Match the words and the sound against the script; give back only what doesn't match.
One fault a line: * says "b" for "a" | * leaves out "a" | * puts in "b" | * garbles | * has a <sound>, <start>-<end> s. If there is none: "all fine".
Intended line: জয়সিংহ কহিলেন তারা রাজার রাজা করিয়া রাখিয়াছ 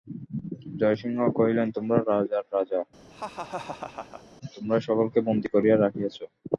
* says "তোমরা" for "তারা"
* has a laugh, 3.1-4.2 s
* puts in "তোমরাই সকলকে বন্দী"